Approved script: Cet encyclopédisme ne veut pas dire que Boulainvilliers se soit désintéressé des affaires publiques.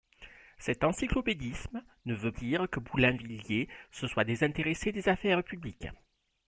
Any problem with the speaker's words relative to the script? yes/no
yes